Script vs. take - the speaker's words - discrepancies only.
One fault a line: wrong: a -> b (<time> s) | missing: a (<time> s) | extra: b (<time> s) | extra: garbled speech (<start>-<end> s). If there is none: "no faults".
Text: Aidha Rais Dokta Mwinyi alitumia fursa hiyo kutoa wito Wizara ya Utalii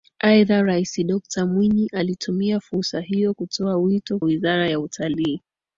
no faults